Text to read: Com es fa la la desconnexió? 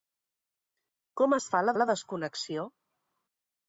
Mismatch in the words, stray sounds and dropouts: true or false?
false